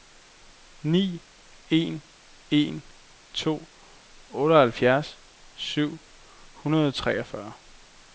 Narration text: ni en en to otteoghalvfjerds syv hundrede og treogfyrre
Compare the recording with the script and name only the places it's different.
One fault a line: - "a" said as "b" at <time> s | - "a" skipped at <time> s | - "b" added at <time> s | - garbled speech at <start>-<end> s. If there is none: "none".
none